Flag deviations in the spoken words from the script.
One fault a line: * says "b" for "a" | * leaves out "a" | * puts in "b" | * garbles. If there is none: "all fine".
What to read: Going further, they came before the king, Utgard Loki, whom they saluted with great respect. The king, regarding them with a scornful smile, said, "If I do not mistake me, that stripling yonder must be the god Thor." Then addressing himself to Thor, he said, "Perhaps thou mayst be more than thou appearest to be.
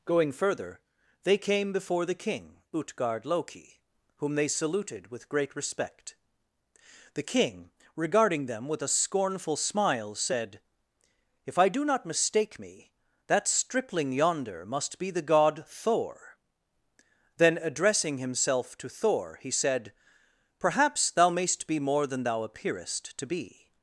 all fine